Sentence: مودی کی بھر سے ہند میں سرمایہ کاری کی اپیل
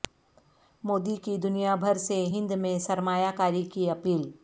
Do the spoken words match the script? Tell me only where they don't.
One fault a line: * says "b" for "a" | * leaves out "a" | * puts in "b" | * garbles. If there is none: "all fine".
* puts in "دنیا"